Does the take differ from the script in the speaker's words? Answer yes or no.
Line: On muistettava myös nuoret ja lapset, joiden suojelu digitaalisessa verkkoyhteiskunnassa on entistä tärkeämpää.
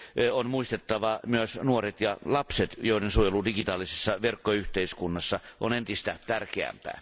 no